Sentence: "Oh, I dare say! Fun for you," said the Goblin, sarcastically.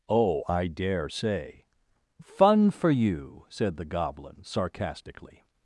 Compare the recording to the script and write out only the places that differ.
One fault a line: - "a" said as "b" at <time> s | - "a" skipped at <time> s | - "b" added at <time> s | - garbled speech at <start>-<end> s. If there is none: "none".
none